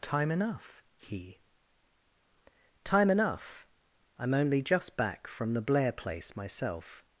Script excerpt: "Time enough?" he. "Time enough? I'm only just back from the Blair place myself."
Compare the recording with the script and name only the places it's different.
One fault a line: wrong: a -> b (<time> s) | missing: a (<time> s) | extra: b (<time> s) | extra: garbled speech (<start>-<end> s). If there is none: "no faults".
no faults